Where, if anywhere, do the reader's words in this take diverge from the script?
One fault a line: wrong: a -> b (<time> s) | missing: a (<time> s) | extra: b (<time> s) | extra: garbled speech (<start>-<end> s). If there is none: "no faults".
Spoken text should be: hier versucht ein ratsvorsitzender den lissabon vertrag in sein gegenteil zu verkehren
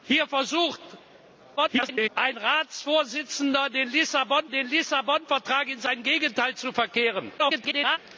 extra: garbled speech (1.6-2.1 s)
extra: den lissabon (4.5 s)
extra: garbled speech (7.4-8.0 s)